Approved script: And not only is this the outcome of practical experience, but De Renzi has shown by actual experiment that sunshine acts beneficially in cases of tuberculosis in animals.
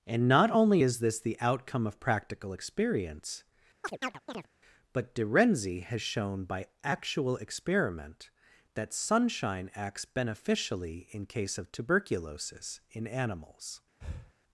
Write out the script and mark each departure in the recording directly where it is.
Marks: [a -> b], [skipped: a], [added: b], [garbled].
And not only is this the outcome of practical experience, but De Renzi has shown by actual experiment that sunshine acts beneficially in [cases -> case] of tuberculosis in animals.